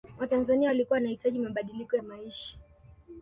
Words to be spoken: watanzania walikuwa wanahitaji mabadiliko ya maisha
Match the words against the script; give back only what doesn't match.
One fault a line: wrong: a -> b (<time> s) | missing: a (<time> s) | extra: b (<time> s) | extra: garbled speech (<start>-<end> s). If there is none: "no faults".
no faults